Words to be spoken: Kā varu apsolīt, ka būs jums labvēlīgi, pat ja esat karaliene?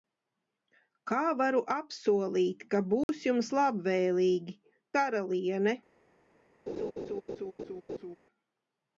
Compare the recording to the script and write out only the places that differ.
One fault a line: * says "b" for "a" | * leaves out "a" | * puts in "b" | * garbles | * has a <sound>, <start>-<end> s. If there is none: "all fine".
* has a dropout, 3.0-3.1 s
* leaves out "pat ja esat"
* has a laugh, 6.7-8.2 s